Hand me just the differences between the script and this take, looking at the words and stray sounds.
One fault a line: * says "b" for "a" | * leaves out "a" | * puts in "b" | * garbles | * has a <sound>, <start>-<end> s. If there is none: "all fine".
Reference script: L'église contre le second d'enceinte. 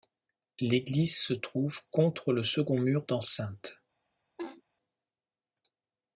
* puts in "se trouve"
* puts in "mur"
* has a laugh, 4.4-4.6 s